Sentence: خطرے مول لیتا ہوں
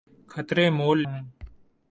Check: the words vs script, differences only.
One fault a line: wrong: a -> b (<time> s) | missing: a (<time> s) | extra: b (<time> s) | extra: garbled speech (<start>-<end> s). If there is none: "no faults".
missing: لیتا (1.0 s)